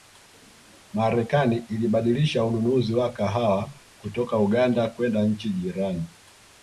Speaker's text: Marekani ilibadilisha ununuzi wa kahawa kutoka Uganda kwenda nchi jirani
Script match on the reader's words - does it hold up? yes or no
yes